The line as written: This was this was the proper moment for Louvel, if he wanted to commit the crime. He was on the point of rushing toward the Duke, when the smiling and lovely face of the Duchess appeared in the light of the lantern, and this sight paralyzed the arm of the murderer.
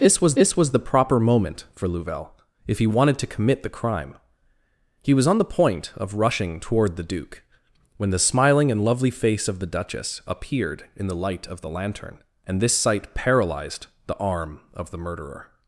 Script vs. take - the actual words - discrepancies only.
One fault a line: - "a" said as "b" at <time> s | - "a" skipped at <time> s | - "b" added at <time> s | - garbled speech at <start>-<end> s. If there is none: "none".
none